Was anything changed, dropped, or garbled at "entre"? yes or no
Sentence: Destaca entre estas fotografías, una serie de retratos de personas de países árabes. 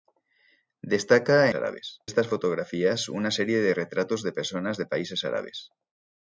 yes